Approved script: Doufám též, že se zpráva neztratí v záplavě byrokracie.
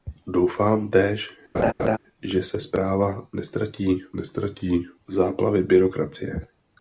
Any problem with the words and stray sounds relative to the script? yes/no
yes